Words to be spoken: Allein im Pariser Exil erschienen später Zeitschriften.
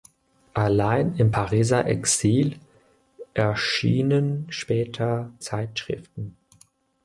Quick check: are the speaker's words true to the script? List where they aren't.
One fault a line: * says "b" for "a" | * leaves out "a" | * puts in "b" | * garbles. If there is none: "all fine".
all fine